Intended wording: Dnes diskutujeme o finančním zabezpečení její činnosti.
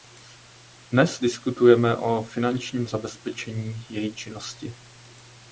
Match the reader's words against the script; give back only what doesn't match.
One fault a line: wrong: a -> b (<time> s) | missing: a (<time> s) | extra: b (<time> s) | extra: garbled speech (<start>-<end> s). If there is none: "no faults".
no faults